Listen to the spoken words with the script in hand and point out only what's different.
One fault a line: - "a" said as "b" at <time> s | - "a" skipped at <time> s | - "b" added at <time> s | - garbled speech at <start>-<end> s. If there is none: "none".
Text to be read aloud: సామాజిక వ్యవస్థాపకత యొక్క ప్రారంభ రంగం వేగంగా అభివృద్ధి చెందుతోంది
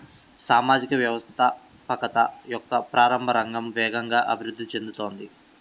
none